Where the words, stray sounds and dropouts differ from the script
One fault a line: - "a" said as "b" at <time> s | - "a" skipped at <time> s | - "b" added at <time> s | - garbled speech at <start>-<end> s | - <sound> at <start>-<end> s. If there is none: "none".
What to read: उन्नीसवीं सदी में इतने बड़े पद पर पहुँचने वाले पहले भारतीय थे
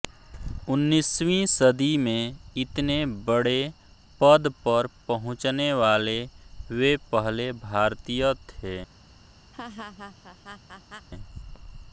- "वे" added at 6.7 s
- laugh at 9.5-11.1 s